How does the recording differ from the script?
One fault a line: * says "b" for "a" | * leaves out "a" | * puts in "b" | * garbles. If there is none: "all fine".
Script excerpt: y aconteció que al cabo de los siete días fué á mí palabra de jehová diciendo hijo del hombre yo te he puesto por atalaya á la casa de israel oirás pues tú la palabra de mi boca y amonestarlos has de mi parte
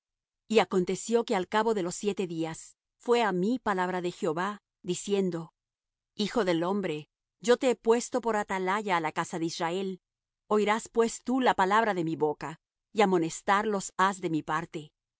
all fine